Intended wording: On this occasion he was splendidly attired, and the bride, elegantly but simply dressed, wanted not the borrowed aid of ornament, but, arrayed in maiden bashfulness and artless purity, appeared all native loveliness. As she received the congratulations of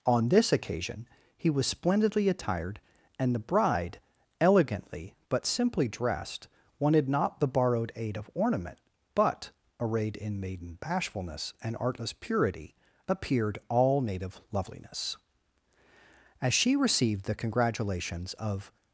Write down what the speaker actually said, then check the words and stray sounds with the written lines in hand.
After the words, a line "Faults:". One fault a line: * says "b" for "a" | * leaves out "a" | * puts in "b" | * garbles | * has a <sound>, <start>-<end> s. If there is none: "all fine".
On this occasion he was splendidly attired, and the bride, elegantly but simply dressed, wanted not the borrowed aid of ornament, but, arrayed in maiden bashfulness and artless purity, appeared all native loveliness. As she received the congratulations of
Faults:
all fine